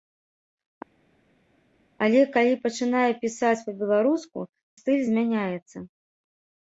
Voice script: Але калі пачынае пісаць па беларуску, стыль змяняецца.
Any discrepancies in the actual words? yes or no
no